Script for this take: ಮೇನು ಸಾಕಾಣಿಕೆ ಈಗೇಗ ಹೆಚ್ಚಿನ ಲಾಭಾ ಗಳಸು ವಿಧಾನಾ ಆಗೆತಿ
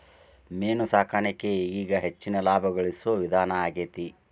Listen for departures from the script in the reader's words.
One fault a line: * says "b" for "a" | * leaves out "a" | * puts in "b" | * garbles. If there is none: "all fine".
all fine